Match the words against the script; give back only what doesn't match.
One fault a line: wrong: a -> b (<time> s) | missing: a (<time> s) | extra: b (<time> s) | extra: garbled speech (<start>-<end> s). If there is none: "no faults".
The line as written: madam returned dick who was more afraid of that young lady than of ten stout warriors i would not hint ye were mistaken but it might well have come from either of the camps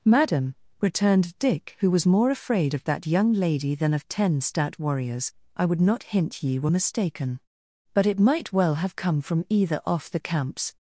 wrong: of -> off (9.8 s)